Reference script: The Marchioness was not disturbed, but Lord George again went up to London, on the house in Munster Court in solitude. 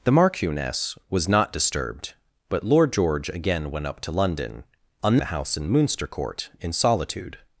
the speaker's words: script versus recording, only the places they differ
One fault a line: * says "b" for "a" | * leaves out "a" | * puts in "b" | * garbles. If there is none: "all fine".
all fine